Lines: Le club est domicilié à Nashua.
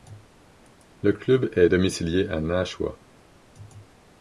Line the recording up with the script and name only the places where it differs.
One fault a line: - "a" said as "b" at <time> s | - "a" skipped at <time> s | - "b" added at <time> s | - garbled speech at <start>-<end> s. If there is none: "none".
none